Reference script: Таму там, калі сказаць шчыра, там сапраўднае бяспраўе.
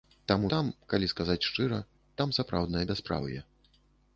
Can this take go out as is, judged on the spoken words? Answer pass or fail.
pass